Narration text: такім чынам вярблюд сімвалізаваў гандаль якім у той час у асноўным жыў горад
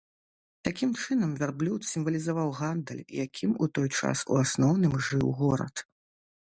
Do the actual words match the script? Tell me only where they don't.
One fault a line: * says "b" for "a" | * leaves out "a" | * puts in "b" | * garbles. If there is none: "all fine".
all fine